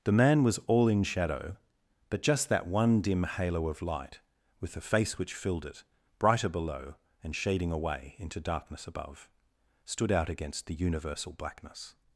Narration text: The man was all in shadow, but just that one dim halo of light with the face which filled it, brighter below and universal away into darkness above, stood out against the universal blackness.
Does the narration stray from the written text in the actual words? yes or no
yes